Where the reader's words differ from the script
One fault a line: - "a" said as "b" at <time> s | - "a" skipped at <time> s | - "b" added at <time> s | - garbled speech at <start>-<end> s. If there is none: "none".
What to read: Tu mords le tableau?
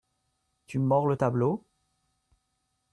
none